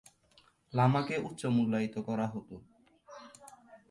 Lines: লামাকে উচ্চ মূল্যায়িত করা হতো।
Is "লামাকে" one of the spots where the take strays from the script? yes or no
no